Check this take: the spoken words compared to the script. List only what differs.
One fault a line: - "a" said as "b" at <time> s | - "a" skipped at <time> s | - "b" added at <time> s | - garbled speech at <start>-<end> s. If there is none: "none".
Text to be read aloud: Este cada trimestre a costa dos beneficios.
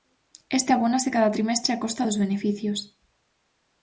- "abónase" added at 0.7 s